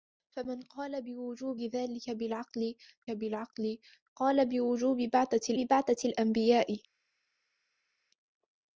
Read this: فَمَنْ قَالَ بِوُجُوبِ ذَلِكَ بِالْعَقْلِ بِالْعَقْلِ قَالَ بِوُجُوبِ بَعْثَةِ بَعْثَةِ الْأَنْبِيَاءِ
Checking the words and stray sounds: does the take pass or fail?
pass